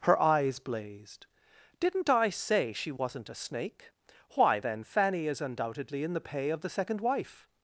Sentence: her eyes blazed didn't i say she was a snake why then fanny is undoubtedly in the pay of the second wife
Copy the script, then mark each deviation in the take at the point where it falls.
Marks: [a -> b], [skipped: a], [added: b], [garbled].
her eyes blazed didn't i say she [was -> wasn't] a snake why then fanny is undoubtedly in the pay of the second wife